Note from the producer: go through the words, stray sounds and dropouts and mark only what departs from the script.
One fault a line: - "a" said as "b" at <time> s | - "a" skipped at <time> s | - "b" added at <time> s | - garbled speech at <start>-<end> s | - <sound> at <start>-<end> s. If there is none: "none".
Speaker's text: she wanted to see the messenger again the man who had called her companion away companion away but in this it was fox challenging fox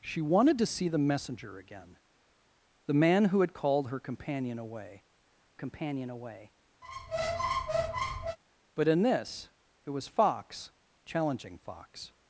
- squeak at 6.8-8.4 s